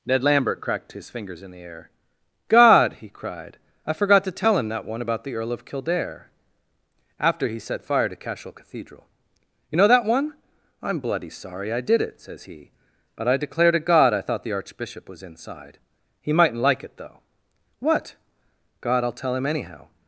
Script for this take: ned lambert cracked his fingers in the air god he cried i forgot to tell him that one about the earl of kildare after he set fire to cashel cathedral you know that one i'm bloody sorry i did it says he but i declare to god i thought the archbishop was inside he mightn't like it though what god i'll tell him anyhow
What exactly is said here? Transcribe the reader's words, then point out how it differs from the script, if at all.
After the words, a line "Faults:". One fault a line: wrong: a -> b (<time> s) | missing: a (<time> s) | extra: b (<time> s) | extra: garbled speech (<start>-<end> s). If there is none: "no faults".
ned lambert cracked his fingers in the air god he cried i forgot to tell him that one about the earl of kildare after he set fire to cashel cathedral you know that one i'm bloody sorry i did it says he but i declare to god i thought the archbishop was inside he mightn't like it though what god i'll tell him anyhow
Faults:
no faults